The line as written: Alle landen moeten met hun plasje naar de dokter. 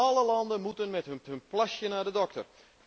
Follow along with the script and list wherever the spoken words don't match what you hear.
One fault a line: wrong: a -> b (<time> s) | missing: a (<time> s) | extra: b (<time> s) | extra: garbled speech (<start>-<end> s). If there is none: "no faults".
extra: hun (1.3 s)